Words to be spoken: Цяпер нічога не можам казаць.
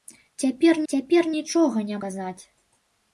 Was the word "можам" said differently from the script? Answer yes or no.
yes